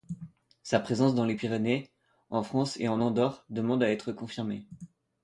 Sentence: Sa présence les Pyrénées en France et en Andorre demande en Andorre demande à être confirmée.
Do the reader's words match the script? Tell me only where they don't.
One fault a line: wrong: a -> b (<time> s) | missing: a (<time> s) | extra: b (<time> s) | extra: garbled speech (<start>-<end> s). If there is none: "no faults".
extra: dans (1.1 s)
missing: en Andorre demande (3.8 s)